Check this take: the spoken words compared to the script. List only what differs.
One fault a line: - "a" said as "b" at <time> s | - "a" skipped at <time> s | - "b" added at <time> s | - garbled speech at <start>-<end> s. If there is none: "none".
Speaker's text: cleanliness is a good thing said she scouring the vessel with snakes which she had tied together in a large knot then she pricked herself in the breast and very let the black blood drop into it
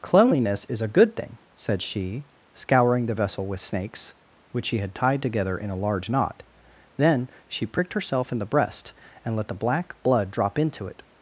- "very" skipped at 9.4 s